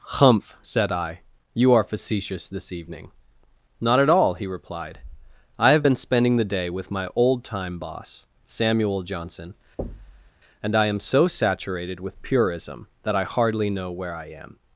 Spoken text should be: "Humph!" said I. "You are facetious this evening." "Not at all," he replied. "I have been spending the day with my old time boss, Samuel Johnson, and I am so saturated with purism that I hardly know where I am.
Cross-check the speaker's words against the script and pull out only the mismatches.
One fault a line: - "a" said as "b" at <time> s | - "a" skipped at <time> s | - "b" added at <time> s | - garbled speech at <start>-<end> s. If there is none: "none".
none